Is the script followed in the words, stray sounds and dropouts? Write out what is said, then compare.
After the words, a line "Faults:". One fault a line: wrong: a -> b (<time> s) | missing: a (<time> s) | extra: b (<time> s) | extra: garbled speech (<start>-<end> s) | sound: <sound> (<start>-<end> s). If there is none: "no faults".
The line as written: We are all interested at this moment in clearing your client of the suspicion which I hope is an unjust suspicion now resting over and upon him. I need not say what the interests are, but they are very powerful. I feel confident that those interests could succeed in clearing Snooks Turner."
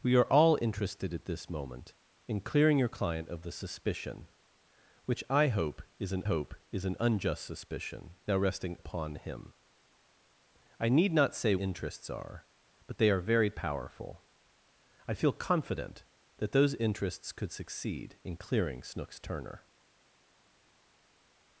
We are all interested at this moment in clearing your client of the suspicion which I hope is an hope is an unjust suspicion now resting upon him. I need not say interests are, but they are very powerful. I feel confident that those interests could succeed in clearing Snooks Turner."
Faults:
extra: hope is an (6.2 s)
missing: over and (8.8 s)
missing: what the (11.6 s)